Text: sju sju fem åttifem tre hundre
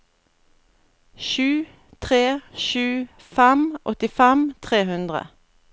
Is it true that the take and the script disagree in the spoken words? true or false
true